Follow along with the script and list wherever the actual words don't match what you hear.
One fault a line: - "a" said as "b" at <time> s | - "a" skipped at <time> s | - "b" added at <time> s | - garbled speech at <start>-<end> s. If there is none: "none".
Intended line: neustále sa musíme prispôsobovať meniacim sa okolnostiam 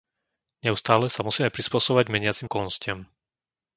- "sa" skipped at 2.5 s